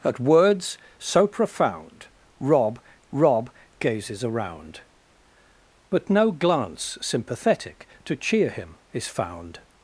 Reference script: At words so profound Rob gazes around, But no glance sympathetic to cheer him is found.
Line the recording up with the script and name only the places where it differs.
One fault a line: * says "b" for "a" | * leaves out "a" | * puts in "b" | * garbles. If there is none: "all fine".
* puts in "Rob"